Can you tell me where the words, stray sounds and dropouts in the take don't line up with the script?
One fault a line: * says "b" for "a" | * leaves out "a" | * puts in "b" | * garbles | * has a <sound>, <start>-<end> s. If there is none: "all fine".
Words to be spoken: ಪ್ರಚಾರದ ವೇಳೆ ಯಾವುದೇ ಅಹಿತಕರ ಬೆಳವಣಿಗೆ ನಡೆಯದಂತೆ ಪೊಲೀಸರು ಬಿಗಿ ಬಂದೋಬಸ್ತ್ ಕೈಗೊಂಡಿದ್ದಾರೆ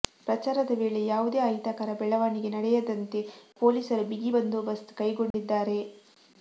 * has a dropout, 5.3-5.3 s